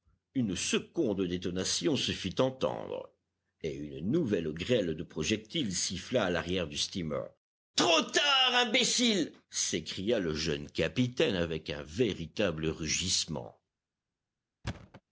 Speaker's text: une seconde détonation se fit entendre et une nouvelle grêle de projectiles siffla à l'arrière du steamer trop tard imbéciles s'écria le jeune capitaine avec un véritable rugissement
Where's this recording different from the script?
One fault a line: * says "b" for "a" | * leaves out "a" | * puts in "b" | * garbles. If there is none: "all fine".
all fine